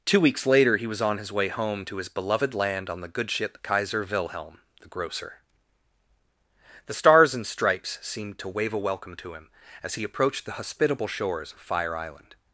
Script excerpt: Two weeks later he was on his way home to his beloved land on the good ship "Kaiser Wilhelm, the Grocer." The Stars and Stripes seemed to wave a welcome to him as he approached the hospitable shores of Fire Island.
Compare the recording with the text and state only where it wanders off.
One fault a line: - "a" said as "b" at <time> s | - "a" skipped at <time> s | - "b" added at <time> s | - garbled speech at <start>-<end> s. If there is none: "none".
none